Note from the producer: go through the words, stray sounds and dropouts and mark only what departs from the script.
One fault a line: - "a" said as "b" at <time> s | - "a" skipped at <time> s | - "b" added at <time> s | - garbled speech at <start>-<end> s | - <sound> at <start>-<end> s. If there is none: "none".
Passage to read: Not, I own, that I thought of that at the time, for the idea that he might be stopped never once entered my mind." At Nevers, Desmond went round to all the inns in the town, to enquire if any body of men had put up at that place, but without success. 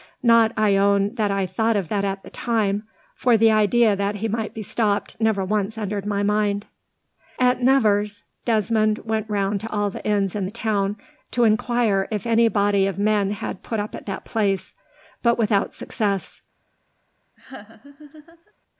- laugh at 17.4-18.5 s